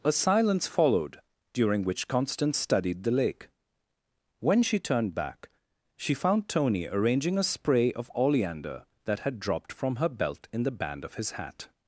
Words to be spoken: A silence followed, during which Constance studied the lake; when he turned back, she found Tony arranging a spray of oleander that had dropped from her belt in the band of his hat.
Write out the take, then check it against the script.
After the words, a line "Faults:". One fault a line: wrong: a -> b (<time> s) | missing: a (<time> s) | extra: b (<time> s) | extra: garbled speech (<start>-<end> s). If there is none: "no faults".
A silence followed, during which Constance studied the lake; when she turned back, she found Tony arranging a spray of oleander that had dropped from her belt in the band of his hat.
Faults:
wrong: he -> she (4.6 s)